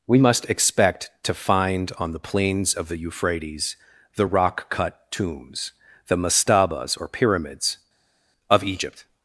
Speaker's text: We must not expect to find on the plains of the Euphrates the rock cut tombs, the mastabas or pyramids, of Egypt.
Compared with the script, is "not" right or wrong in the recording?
wrong